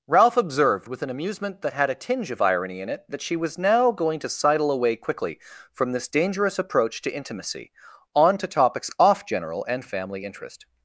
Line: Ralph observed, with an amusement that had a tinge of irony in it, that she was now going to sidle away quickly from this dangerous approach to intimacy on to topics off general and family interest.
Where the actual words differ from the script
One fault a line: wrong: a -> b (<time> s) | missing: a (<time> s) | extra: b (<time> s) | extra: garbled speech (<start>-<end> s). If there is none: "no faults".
no faults